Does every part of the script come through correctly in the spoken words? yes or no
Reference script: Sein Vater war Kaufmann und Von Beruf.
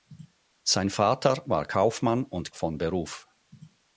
yes